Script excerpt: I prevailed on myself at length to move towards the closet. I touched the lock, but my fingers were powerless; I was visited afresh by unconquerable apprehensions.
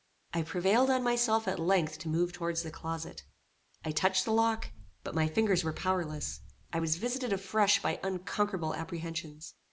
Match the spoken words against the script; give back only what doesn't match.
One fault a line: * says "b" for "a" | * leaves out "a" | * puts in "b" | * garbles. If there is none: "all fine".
all fine